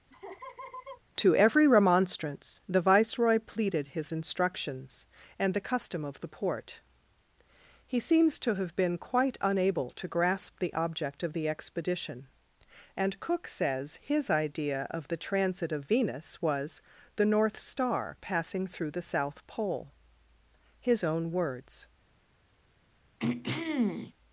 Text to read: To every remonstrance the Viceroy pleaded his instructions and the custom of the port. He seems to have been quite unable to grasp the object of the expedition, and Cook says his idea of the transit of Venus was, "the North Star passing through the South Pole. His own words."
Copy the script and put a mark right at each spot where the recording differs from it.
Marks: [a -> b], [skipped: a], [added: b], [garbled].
To every remonstrance the Viceroy pleaded his instructions and the custom of the port. He seems to have been quite unable to grasp the object of the expedition, and Cook says his idea of the transit of Venus was, "the North Star passing through the South Pole. His own words."